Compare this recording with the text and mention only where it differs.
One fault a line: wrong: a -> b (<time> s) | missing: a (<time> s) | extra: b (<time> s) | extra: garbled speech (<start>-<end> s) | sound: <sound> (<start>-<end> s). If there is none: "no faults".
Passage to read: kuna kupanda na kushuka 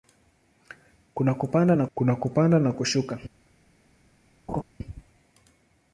extra: kuna kupanda na (1.9 s)
sound: laugh (4.5-4.6 s)